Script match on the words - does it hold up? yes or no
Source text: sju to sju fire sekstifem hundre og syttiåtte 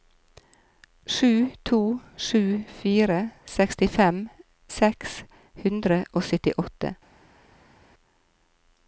no